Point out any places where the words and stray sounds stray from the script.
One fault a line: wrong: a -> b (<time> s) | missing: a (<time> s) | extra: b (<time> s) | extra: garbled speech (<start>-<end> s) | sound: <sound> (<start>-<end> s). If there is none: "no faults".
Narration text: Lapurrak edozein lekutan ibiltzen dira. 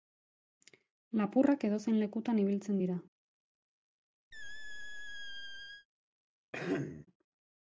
sound: squeak (4.3-5.9 s)
sound: throat clearing (6.5-7.1 s)